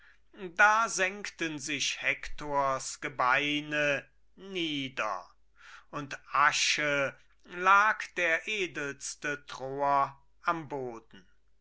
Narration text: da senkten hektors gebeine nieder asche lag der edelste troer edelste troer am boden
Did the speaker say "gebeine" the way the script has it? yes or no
yes